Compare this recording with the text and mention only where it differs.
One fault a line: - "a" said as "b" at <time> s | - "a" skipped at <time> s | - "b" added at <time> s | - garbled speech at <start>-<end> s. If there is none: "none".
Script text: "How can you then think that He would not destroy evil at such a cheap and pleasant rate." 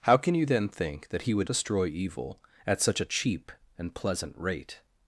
- "not" skipped at 1.5 s